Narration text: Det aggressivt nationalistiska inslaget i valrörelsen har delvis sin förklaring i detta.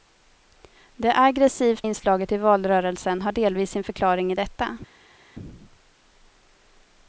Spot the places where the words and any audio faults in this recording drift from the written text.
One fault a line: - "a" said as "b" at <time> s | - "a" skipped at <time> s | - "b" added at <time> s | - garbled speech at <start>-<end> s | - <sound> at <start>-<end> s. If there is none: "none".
- "nationalistiska" skipped at 1.9 s